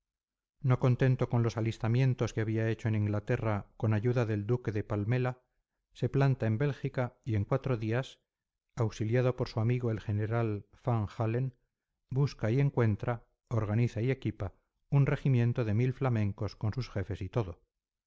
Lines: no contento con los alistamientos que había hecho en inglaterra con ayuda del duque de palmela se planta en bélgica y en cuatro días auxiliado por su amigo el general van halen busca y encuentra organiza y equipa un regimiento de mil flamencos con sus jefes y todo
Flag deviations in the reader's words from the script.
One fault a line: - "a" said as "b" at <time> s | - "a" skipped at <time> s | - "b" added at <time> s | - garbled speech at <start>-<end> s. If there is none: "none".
none